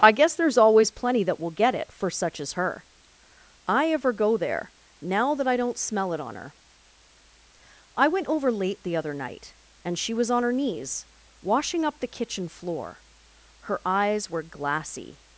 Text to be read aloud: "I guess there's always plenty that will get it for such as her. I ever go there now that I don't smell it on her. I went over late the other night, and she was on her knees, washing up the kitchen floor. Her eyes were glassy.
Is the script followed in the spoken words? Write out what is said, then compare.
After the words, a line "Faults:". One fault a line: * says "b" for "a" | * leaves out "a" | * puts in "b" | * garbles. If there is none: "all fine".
"I guess there's always plenty that will get it for such as her. I ever go there now that I don't smell it on her. I went over late the other night, and she was on her knees, washing up the kitchen floor. Her eyes were glassy.
Faults:
all fine